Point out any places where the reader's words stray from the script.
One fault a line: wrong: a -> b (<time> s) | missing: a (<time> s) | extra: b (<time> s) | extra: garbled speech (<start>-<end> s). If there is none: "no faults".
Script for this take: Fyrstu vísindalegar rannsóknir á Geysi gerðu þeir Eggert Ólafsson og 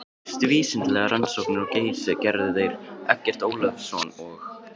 no faults